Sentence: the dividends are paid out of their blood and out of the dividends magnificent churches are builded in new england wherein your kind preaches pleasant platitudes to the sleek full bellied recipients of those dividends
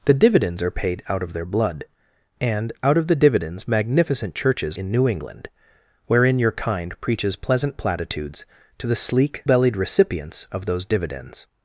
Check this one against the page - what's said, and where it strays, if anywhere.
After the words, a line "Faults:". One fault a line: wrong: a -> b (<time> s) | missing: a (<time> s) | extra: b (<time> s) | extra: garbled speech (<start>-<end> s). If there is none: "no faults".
the dividends are paid out of their blood and out of the dividends magnificent churches in new england wherein your kind preaches pleasant platitudes to the sleek bellied recipients of those dividends
Faults:
missing: are builded (4.8 s)
missing: full (9.4 s)